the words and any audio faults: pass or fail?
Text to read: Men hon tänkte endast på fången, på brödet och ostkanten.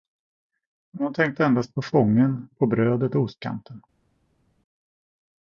pass